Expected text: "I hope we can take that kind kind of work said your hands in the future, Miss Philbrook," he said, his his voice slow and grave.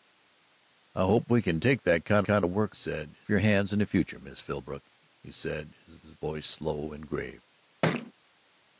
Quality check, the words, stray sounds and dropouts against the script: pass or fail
fail